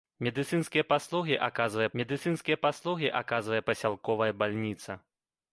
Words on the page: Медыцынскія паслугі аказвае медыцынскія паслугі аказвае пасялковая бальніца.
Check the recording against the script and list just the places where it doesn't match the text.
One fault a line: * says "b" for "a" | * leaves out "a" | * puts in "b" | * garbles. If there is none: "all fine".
all fine